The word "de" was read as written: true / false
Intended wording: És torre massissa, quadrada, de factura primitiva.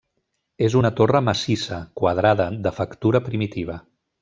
true